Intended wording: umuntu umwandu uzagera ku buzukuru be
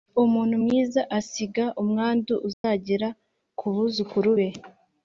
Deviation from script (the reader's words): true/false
true